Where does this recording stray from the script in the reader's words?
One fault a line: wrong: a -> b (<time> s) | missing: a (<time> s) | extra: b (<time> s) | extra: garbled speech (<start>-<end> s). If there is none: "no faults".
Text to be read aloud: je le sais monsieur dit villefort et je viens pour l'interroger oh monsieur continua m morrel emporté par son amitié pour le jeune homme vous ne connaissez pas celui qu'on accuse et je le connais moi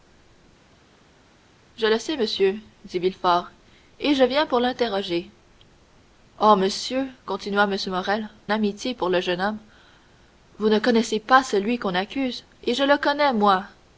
missing: emporté par son (8.3 s)